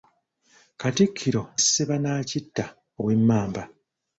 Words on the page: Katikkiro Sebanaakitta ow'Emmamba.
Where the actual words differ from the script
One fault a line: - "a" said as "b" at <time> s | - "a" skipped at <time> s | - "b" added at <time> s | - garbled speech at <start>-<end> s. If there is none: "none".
none